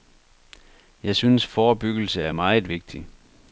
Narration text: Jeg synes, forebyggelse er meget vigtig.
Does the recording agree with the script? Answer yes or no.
yes